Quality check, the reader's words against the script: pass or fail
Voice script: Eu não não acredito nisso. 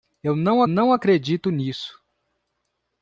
pass